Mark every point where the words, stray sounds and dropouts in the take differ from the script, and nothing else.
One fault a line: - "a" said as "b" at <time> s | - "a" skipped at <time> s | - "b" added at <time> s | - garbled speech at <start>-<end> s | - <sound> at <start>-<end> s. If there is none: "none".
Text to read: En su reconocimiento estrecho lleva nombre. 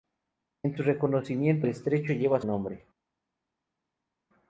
none